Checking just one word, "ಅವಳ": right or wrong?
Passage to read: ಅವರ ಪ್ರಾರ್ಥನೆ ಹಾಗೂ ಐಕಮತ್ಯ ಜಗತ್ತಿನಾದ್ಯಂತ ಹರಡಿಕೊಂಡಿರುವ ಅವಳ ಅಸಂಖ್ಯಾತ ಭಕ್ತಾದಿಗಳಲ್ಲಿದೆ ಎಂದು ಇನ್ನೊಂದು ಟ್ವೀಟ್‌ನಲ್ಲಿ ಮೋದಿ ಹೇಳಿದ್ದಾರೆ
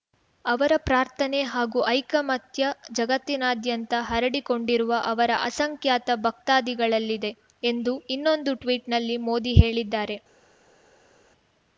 wrong